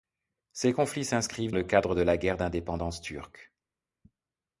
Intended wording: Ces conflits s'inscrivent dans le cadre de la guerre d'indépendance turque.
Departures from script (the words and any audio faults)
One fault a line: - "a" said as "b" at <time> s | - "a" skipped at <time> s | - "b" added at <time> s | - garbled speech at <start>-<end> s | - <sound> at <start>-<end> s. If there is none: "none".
- "dans" skipped at 1.5 s